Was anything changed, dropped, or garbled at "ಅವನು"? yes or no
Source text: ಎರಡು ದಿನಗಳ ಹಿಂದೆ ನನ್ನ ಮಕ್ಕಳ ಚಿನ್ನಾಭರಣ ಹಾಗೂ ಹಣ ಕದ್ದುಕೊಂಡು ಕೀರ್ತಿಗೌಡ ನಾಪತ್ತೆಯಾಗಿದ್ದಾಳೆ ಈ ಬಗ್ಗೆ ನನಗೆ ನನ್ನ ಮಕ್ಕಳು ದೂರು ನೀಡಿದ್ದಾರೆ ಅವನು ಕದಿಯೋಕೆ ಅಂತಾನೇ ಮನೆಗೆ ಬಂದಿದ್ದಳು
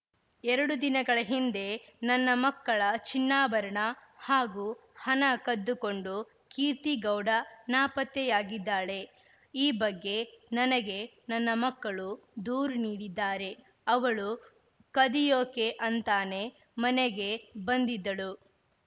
yes